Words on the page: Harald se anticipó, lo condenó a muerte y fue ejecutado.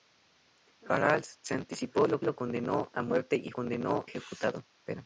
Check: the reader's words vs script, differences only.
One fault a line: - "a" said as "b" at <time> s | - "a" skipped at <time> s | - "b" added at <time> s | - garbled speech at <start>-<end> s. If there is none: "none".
- "lo" added at 2.2 s
- "fue" said as "condenó" at 3.5 s